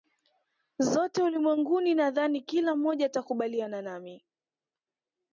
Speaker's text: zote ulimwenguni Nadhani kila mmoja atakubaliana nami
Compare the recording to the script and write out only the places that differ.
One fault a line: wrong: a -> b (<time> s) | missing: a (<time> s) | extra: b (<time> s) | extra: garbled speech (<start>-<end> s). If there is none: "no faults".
no faults